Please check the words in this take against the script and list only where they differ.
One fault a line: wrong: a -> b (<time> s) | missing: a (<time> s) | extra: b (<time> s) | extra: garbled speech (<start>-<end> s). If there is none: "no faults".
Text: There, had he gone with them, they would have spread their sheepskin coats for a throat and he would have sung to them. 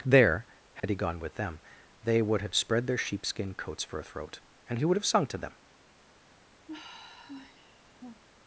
no faults